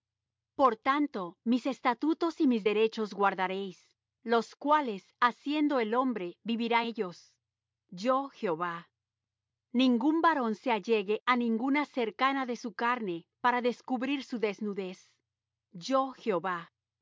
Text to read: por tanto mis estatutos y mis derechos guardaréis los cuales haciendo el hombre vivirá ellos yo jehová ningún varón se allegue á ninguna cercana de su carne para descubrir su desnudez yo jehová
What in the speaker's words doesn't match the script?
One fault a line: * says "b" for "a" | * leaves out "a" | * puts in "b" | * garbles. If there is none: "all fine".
all fine